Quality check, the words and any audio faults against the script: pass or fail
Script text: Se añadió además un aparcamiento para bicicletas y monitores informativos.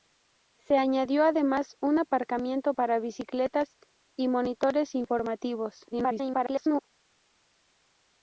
fail